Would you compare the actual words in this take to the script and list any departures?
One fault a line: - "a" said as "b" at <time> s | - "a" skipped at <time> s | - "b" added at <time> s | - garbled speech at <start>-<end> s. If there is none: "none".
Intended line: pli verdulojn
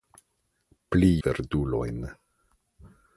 none